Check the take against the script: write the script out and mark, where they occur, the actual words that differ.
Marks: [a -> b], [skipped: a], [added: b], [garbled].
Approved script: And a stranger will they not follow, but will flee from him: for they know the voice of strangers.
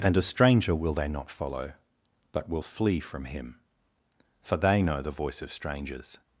And a stranger will they not follow, but will flee from him: for they know the voice of strangers.